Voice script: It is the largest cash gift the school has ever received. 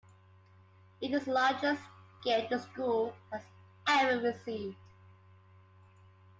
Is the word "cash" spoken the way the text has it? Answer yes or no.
no